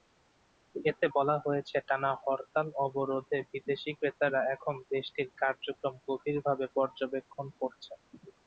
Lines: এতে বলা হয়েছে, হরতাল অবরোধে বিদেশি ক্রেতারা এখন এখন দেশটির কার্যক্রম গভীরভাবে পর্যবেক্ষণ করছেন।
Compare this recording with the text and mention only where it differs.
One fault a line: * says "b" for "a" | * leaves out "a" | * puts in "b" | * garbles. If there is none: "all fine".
* puts in "টানা"
* leaves out "এখন"